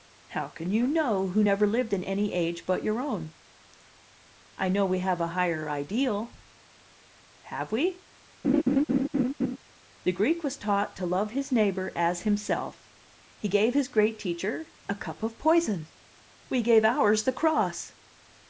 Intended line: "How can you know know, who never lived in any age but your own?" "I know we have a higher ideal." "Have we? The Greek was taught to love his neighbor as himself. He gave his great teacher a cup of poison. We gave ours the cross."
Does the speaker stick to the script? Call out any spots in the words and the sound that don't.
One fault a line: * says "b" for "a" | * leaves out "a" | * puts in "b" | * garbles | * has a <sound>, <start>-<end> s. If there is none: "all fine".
* leaves out "know"
* has a laugh, 8.4-9.6 s